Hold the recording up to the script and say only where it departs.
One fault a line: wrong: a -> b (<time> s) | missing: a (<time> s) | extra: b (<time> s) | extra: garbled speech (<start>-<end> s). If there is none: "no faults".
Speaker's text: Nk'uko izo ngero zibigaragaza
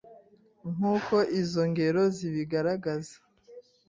no faults